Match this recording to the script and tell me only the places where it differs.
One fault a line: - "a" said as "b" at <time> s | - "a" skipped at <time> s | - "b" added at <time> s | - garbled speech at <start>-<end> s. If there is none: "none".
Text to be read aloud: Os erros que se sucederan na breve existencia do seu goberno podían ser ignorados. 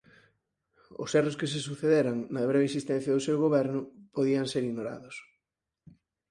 none